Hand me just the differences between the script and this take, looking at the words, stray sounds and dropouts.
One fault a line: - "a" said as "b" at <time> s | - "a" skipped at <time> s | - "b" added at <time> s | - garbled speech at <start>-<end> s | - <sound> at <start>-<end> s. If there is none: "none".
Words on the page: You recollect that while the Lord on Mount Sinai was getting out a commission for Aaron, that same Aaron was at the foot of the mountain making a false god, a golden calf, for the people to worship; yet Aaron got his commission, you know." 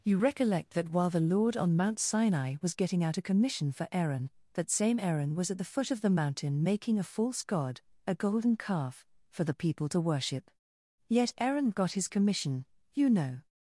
none